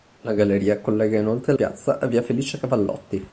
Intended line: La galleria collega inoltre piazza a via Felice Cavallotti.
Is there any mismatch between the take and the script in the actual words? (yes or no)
no